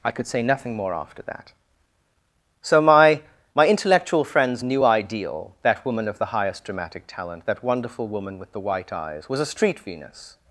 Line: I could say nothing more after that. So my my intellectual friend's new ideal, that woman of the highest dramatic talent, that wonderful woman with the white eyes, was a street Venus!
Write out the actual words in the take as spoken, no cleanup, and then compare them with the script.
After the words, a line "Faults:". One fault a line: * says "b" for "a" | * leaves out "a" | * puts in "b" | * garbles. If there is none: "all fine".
I could say nothing more after that. So my my intellectual friend's new ideal, that woman of the highest dramatic talent, that wonderful woman with the white eyes, was a street Venus!
Faults:
all fine